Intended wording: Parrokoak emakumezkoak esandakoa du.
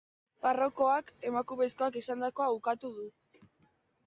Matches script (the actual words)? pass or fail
fail